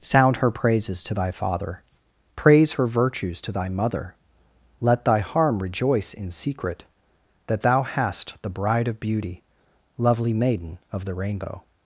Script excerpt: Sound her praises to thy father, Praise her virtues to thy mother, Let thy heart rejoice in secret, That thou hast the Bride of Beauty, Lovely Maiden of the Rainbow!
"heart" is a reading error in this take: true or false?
true